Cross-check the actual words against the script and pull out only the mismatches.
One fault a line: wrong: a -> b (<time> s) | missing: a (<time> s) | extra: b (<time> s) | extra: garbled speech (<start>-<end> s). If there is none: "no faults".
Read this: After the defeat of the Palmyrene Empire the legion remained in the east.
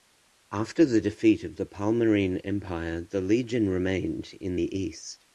no faults